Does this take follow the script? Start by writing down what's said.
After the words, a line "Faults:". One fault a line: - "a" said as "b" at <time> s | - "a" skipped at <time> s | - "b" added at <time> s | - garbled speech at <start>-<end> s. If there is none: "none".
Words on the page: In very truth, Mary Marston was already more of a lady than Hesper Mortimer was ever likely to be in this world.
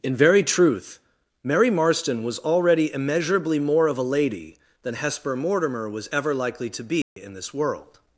In very truth, Mary Marston was already immeasurably more of a lady than Hesper Mortimer was ever likely to be in this world.
Faults:
- "immeasurably" added at 2.9 s